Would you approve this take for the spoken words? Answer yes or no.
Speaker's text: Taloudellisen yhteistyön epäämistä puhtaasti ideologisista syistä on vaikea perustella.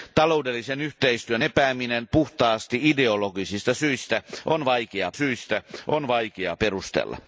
no